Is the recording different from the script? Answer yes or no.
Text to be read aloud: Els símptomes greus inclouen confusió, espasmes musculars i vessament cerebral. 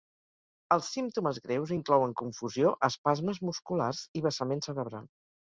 no